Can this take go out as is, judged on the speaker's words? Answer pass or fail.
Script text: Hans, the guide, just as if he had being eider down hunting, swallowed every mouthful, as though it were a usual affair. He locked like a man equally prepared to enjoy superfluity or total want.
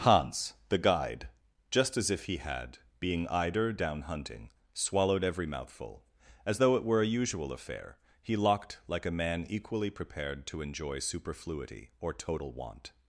pass